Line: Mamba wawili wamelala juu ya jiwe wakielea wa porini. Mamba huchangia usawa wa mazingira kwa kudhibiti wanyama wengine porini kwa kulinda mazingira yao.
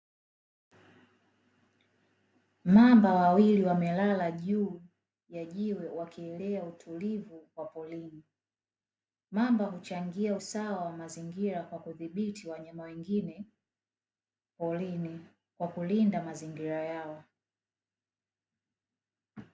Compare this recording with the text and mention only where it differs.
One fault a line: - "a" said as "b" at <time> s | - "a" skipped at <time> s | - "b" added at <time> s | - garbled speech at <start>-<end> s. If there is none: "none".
- "utulivu" added at 6.6 s